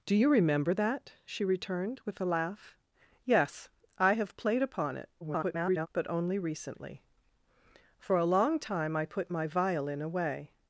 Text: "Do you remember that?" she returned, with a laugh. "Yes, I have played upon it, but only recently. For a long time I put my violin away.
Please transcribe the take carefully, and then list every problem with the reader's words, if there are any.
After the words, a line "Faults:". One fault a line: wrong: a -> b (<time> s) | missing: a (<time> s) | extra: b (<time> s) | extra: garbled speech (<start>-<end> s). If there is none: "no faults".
"Do you remember that?" she returned, with a laugh. "Yes, I have played upon it, [garbled] but only recently. For a long time I put my violin away.
Faults:
extra: garbled speech (5.2-5.9 s)